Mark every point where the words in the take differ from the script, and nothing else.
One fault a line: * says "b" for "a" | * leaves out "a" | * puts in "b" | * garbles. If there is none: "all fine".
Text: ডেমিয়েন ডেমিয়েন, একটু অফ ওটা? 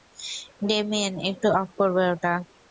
* leaves out "ডেমিয়েন"
* puts in "করবে"